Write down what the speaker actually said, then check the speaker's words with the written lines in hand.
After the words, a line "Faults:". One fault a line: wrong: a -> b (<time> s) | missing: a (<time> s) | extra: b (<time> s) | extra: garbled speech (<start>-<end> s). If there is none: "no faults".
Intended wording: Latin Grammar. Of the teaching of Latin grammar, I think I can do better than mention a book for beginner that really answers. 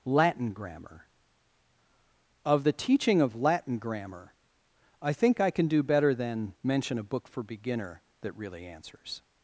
Latin Grammar. Of the teaching of Latin grammar, I think I can do better than mention a book for beginner that really answers.
Faults:
no faults